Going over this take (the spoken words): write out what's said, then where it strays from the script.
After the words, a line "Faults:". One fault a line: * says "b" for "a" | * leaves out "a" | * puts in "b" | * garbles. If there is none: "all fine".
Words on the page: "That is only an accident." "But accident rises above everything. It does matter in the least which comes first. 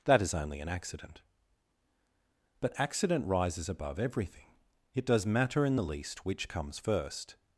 "That is only an accident." "But accident rises above everything. It does matter in the least which comes first.
Faults:
all fine